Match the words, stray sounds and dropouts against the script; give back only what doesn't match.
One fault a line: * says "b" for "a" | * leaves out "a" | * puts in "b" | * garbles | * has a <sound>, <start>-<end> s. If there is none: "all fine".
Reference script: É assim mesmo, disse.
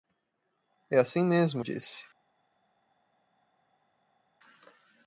all fine